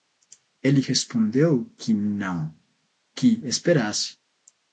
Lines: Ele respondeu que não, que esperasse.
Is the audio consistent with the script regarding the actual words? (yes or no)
yes